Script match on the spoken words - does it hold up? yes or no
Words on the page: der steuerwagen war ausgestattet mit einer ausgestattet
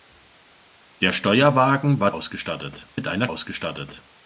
yes